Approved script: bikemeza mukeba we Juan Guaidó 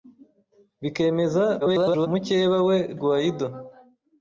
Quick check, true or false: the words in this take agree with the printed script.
false